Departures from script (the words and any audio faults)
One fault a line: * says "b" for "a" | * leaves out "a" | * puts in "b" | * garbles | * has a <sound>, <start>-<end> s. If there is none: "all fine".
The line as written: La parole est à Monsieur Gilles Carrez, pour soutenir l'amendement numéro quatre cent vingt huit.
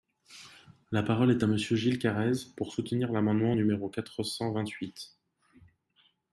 all fine